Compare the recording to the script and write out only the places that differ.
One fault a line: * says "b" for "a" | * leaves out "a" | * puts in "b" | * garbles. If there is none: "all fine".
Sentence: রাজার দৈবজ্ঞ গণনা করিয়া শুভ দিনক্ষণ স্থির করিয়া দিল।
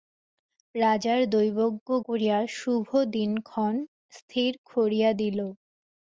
* leaves out "গণনা"